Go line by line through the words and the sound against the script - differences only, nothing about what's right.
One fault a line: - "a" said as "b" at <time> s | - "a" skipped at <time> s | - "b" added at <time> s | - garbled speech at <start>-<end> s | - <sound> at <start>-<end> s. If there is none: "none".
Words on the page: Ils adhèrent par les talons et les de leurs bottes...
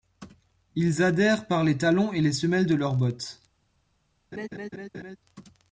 - "semelles" added at 2.3 s
- laugh at 4.3-5.2 s